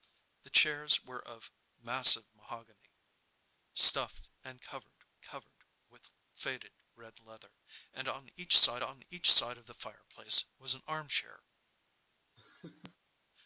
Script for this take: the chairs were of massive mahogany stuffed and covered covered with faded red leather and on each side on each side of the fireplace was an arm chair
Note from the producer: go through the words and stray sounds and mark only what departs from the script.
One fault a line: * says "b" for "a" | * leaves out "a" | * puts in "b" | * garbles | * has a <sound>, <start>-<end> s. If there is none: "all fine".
* has a laugh, 12.4-13.0 s